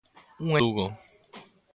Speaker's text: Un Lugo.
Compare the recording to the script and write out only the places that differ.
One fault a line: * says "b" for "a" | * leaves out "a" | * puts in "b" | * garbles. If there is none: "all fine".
all fine